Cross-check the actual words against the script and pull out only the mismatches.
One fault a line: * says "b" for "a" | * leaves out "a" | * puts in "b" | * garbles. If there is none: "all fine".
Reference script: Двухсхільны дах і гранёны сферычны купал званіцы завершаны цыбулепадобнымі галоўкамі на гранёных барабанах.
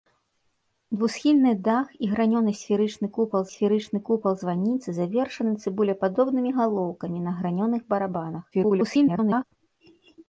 * puts in "сферычны купал"
* garbles